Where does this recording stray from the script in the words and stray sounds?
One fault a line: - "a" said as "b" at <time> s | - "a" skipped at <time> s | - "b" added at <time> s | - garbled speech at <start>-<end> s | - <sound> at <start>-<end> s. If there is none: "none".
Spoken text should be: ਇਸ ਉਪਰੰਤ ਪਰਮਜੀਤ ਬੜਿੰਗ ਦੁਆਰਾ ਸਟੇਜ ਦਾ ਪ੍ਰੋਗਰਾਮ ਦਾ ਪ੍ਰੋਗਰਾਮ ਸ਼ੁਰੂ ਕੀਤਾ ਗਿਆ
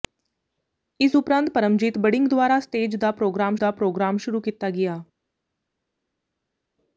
none